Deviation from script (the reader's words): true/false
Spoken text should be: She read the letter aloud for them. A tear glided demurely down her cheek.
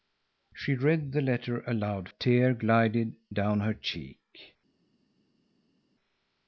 true